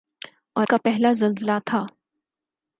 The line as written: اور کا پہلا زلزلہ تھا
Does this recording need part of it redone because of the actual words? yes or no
no